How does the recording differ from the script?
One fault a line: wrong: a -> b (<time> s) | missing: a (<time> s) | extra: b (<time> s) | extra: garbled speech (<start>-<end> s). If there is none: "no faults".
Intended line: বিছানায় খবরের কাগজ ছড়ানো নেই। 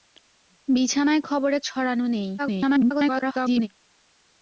missing: কাগজ (1.6 s)
extra: garbled speech (2.4-3.7 s)